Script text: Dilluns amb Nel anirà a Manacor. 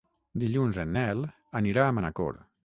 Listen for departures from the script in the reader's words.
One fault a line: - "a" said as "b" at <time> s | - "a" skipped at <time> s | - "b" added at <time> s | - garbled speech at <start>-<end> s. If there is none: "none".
- "amb" said as "en" at 0.8 s